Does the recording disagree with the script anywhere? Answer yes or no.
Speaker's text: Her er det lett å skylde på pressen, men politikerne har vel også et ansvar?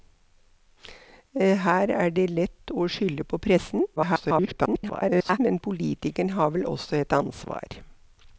yes